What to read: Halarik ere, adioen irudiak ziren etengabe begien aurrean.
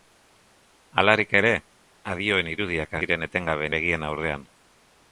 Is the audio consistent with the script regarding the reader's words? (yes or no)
yes